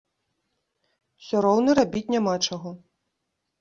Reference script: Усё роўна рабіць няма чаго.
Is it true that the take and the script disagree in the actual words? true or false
false